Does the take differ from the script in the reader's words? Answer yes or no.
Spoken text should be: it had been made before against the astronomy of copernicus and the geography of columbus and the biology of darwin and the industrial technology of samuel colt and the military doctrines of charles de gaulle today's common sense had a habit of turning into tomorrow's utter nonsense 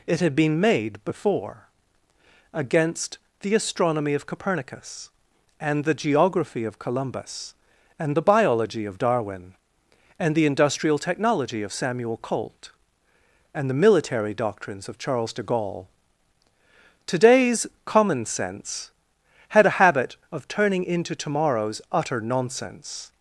no